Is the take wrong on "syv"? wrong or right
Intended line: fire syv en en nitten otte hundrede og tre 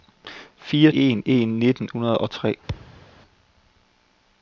wrong